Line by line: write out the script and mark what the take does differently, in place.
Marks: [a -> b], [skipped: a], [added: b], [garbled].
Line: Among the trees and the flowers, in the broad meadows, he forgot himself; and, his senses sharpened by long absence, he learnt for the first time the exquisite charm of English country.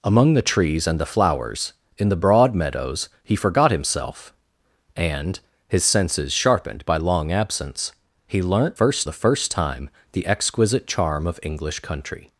Among the trees and the flowers, in the broad meadows, he forgot himself; and, his senses sharpened by long absence, he learnt [for -> first] the first time the exquisite charm of English country.